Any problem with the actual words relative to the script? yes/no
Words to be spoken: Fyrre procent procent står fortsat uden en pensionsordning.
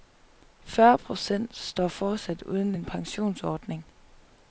yes